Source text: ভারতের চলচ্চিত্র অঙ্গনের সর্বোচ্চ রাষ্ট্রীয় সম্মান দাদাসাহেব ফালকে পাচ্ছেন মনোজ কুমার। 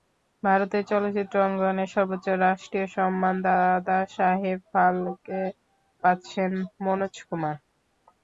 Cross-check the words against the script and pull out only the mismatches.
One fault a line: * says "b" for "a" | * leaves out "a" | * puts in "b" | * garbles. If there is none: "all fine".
all fine